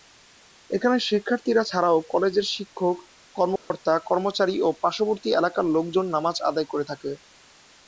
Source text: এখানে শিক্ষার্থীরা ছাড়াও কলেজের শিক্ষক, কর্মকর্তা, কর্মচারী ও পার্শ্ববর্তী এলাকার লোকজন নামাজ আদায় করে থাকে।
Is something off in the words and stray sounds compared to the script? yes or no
yes